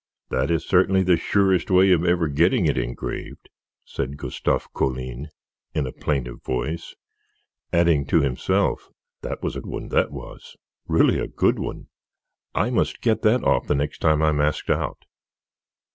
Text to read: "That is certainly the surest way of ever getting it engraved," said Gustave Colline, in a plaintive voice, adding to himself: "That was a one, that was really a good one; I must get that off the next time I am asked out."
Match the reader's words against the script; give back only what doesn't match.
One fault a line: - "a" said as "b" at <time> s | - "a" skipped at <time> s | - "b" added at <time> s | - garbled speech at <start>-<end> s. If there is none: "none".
none